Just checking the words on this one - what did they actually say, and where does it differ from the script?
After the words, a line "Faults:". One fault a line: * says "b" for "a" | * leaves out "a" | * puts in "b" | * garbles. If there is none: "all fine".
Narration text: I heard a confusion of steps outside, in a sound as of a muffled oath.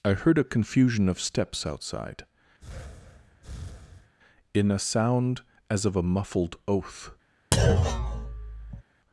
I heard a confusion of steps outside, in a sound as of a muffled oath.
Faults:
all fine